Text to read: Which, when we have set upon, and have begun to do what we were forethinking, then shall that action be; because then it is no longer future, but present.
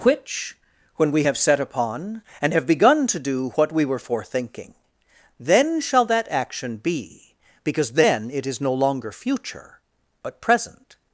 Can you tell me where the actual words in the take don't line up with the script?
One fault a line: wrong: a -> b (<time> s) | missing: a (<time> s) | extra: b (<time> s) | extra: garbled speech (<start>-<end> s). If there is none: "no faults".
no faults